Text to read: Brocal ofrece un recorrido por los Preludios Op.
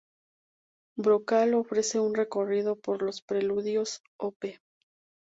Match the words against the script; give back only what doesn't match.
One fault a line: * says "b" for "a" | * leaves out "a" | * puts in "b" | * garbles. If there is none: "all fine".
all fine